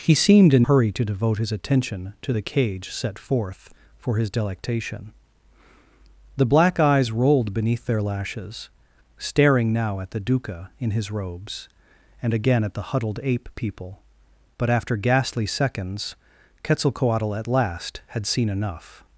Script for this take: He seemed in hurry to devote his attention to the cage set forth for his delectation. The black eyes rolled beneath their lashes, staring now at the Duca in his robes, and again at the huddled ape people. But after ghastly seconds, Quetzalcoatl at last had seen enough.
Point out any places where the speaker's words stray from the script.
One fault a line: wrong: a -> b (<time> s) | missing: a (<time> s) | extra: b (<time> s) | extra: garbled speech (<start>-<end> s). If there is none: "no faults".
no faults